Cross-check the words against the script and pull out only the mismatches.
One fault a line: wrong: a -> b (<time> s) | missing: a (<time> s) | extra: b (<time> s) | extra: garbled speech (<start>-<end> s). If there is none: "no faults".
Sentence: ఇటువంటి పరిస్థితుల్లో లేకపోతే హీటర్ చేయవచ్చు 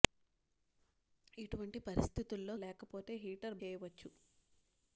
no faults